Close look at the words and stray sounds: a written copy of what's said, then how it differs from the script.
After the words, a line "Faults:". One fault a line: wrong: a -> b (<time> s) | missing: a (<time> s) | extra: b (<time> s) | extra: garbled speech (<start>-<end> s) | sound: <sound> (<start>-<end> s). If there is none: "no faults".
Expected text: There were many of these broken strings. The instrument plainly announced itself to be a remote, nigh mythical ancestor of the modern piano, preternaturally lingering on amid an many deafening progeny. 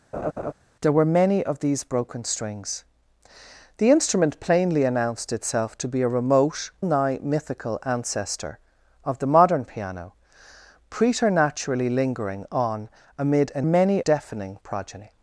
There were many of these broken strings. The instrument plainly announced itself to be a remote, nigh mythical ancestor of the modern piano, preternaturally lingering on amid an many deafening progeny.
Faults:
sound: laugh (0.1-0.5 s)